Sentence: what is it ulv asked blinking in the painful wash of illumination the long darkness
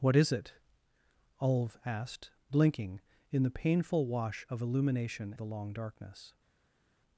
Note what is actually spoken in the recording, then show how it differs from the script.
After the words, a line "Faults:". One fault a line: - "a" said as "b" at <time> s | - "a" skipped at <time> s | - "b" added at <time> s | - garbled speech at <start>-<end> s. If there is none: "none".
what is it ulv asked blinking in the painful wash of illumination the long darkness
Faults:
none